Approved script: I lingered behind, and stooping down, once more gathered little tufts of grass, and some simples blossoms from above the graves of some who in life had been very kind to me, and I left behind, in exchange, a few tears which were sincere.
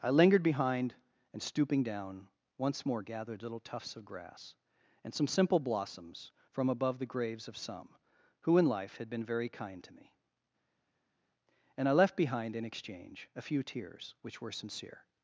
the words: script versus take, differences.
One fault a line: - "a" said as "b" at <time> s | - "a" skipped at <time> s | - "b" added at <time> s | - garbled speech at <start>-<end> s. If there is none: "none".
- "simples" said as "simple" at 5.3 s